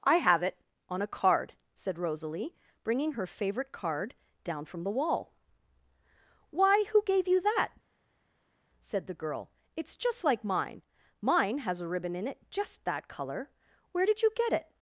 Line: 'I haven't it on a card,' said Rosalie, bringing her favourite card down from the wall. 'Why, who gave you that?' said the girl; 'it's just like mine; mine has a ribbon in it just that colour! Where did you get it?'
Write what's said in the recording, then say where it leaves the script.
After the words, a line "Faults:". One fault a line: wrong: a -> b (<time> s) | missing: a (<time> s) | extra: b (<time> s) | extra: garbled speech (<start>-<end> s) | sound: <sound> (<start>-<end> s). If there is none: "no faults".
'I have it on a card,' said Rosalie, bringing her favourite card down from the wall. 'Why, who gave you that?' said the girl; 'it's just like mine; mine has a ribbon in it just that colour! Where did you get it?'
Faults:
wrong: haven't -> have (0.2 s)